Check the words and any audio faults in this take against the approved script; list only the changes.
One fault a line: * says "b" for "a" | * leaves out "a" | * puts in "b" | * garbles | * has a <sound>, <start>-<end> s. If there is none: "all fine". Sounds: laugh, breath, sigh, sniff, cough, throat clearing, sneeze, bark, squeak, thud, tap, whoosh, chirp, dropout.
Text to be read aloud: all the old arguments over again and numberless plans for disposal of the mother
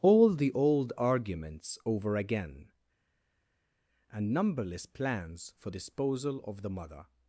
all fine